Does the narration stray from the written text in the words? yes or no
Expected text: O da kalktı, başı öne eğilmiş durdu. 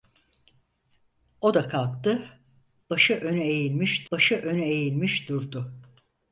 yes